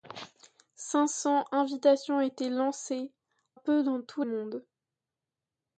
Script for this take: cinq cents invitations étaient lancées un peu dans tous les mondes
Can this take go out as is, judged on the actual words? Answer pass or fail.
fail